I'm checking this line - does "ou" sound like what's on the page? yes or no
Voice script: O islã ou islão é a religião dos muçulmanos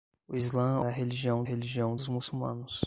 no